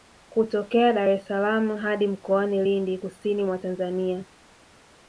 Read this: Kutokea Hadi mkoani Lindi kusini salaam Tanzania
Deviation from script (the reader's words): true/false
true